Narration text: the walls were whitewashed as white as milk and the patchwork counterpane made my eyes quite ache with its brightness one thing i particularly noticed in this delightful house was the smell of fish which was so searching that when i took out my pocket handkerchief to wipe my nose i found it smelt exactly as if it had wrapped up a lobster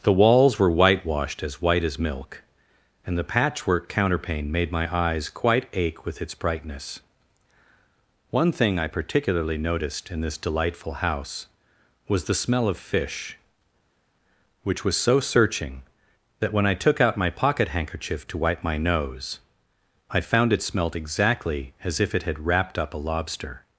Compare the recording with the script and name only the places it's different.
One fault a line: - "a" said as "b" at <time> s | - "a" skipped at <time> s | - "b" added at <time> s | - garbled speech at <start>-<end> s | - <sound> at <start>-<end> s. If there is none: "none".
none